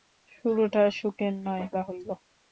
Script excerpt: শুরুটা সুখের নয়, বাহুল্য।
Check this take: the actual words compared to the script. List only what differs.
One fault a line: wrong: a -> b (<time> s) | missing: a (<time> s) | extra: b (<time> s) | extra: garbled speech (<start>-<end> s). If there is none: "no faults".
no faults